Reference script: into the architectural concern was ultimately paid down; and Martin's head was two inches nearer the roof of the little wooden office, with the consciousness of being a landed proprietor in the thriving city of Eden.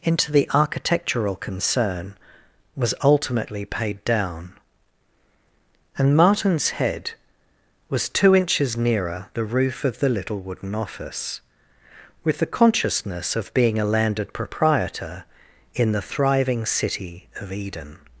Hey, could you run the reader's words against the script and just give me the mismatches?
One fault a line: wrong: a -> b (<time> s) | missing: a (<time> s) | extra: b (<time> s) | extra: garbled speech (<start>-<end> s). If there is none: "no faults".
no faults